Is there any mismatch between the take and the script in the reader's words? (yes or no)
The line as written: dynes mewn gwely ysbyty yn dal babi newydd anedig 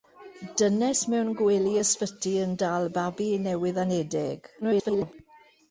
yes